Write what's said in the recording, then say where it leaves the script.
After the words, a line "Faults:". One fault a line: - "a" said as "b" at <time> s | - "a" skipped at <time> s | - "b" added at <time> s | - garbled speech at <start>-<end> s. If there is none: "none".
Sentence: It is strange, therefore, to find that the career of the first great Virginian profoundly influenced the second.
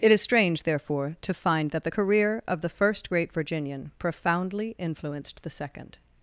It is strange, therefore, to find that the career of the first great Virginian profoundly influenced the second.
Faults:
none